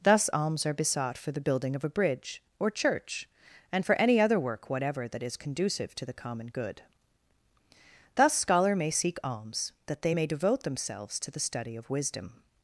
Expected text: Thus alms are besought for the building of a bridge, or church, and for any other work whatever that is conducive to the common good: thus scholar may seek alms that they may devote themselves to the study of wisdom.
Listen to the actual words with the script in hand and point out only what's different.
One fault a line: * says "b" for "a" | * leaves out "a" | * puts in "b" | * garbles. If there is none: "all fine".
all fine